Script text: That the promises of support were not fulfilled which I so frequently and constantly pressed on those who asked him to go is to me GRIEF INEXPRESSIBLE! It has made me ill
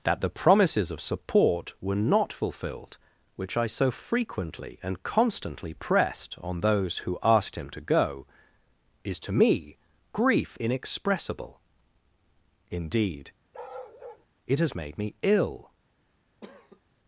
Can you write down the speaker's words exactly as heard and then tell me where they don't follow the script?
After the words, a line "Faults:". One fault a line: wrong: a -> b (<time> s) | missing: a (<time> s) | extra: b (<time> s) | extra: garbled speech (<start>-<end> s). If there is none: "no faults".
That the promises of support were not fulfilled which I so frequently and constantly pressed on those who asked him to go is to me GRIEF INEXPRESSIBLE! Indeed, it has made me ill
Faults:
extra: Indeed (12.7 s)